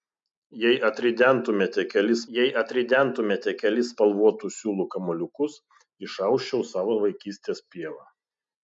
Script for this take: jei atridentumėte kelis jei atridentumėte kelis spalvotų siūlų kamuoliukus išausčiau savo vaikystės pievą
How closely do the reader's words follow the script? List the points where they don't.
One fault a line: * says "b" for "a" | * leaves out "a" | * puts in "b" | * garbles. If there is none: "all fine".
all fine